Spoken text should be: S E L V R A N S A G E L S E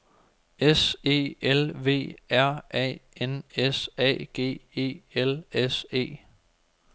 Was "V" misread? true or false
false